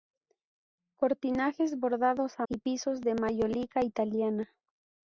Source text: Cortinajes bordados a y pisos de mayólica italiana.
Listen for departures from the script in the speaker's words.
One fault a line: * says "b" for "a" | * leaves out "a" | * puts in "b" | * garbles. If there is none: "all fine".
all fine